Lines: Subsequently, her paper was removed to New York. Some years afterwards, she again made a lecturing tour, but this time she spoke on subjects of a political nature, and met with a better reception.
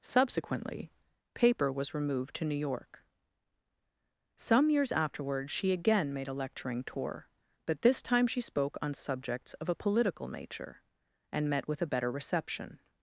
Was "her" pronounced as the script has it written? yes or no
no